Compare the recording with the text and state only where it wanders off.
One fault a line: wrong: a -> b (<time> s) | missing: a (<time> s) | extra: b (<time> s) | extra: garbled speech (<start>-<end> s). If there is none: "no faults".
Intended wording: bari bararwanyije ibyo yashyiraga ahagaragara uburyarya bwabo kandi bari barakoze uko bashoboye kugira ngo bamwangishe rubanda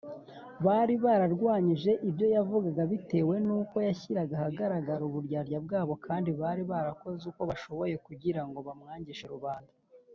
extra: yavugaga bitewe nuko (2.4 s)